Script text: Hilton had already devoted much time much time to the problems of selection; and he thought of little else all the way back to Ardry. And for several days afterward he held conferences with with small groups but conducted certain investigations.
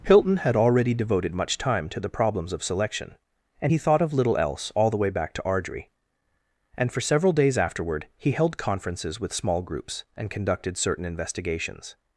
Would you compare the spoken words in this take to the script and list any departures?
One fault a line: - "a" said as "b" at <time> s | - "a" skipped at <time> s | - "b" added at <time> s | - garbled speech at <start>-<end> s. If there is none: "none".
- "much time" skipped at 1.9 s
- "with" skipped at 9.3 s
- "but" said as "and" at 10.2 s